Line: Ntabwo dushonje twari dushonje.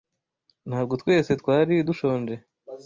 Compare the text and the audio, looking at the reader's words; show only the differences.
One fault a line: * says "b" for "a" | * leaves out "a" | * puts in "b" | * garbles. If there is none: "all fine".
* says "twese" for "dushonje"